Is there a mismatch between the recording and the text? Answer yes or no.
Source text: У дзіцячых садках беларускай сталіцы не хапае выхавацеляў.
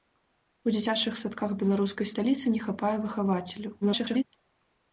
yes